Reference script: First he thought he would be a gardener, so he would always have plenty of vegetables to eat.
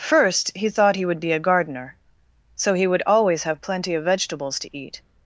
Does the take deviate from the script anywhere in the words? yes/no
no